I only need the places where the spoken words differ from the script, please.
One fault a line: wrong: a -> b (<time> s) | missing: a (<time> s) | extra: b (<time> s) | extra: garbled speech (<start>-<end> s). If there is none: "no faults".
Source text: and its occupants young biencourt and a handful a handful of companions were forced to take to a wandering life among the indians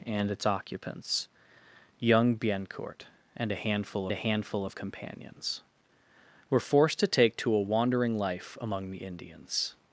no faults